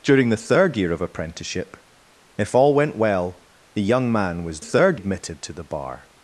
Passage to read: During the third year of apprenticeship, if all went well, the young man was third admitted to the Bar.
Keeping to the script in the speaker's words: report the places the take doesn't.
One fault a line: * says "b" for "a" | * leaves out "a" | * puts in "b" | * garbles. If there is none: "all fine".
all fine